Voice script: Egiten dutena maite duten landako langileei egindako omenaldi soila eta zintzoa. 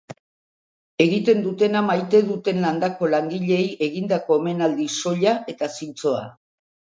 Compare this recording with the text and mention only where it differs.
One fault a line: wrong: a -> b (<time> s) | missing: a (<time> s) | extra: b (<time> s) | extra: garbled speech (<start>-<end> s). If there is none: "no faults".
no faults